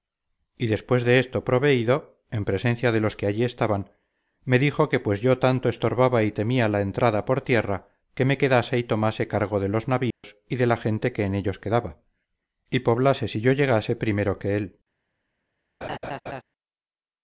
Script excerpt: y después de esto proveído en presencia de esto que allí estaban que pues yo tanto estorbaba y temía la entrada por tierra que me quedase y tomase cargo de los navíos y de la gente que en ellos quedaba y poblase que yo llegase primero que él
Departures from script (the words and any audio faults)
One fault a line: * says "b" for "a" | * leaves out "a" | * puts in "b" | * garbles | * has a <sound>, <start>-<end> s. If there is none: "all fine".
* says "los" for "esto"
* puts in "me dijo"
* has a dropout, 10.1-10.2 s
* says "si" for "que"
* has a laugh, 15.8-16.4 s